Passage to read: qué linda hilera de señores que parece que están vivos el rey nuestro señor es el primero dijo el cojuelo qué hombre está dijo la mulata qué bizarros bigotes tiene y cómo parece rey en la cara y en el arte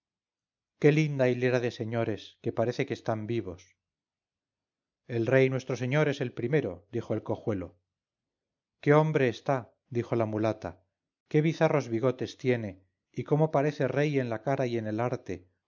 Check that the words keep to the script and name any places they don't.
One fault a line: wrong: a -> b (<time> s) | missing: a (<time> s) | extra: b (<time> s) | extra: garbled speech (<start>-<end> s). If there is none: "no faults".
no faults